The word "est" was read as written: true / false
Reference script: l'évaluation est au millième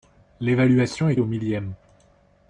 true